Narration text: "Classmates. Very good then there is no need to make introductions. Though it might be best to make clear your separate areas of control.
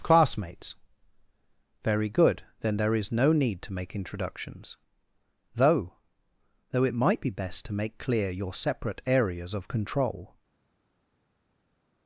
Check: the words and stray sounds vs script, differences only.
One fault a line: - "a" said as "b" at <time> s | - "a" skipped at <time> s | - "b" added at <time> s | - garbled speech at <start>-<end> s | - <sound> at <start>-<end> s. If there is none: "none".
- "Though" added at 6.7 s